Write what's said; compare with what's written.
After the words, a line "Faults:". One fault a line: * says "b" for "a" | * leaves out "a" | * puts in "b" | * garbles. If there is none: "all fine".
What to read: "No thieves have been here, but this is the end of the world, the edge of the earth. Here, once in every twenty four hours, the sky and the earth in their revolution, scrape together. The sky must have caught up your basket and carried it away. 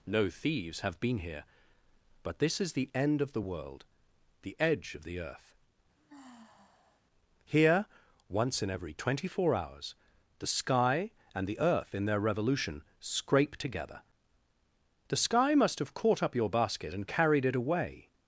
"No thieves have been here, but this is the end of the world, the edge of the earth. Here, once in every twenty four hours, the sky and the earth in their revolution, scrape together. The sky must have caught up your basket and carried it away.
Faults:
all fine